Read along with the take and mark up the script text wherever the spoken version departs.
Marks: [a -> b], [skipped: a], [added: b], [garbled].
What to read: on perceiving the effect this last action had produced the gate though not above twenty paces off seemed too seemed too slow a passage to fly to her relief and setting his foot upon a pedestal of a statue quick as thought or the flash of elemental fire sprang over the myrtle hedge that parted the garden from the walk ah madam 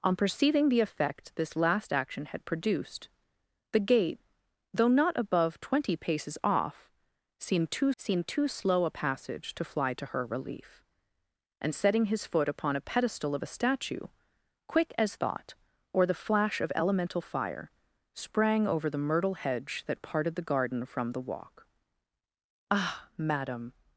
on perceiving the effect this last action had produced the gate though not above twenty paces off seemed too seemed too slow a passage to fly to her relief and setting his foot upon a pedestal of a statue quick as thought or the flash of elemental fire sprang over the myrtle hedge that parted the garden from the walk ah madam